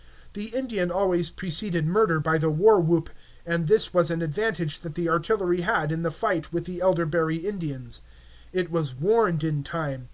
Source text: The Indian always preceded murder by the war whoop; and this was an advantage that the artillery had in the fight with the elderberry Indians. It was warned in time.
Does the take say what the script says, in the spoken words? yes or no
yes